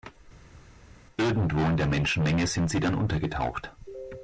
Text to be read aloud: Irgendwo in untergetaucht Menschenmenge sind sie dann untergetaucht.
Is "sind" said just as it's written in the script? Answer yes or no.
yes